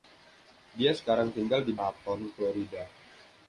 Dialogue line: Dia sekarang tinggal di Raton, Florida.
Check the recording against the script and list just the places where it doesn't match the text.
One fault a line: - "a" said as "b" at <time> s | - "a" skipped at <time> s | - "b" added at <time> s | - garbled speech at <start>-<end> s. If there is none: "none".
none